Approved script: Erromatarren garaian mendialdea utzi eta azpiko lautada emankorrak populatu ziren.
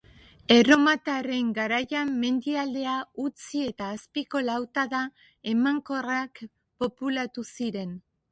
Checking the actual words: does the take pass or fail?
pass